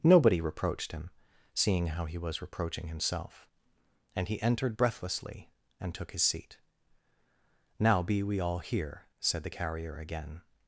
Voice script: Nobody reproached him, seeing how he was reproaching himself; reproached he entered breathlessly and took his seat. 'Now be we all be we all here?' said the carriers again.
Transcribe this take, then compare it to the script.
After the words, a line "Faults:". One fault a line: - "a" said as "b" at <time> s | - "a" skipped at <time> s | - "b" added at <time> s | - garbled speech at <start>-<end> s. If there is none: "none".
Nobody reproached him, seeing how he was reproaching himself; and he entered breathlessly and took his seat. 'Now be we all here?' said the carrier again.
Faults:
- "reproached" said as "and" at 4.2 s
- "be we all" skipped at 8.6 s
- "carriers" said as "carrier" at 9.5 s